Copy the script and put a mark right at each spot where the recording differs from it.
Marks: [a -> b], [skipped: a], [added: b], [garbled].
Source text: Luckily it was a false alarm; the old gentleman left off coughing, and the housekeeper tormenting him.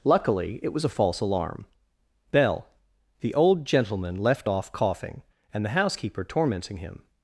Luckily it was a false alarm; [added: bell] the old gentleman left off coughing, and the housekeeper tormenting him.